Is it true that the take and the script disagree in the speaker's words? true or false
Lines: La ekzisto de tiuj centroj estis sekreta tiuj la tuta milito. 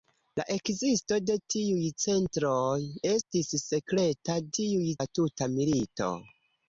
false